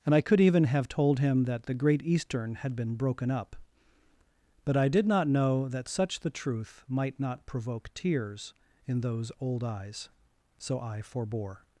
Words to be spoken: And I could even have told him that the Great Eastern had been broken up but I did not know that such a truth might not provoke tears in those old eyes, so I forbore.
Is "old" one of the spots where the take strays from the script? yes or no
no